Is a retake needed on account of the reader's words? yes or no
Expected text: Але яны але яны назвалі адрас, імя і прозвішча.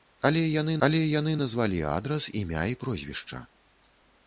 no